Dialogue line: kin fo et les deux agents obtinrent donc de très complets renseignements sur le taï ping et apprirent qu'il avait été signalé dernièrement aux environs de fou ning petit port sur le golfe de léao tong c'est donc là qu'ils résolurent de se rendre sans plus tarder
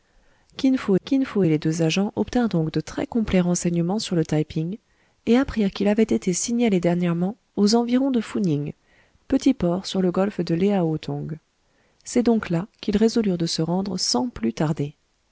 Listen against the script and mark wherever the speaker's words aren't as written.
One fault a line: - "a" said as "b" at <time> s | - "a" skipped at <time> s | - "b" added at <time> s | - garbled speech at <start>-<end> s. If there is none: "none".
- "kin fo" added at 1.0 s